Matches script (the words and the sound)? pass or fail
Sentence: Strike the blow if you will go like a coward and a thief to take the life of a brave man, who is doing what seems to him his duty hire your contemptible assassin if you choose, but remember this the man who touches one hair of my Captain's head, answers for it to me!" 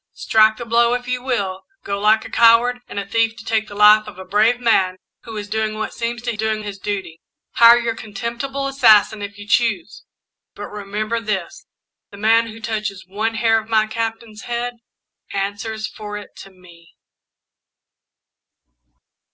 fail